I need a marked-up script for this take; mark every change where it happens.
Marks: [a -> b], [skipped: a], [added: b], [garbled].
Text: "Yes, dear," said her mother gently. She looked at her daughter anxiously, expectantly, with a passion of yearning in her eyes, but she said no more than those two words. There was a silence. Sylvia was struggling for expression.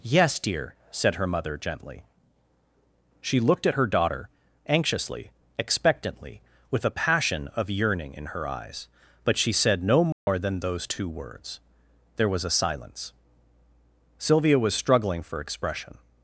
"Yes, dear," said her mother gently. She looked at her daughter anxiously, expectantly, with a passion of yearning in her eyes, but she said no more than those two words. There was a silence. Sylvia was struggling for expression.